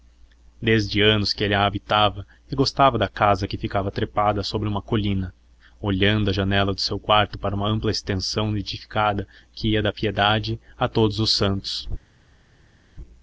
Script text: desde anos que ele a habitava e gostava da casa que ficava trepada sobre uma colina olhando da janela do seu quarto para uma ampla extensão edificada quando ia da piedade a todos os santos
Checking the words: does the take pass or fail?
fail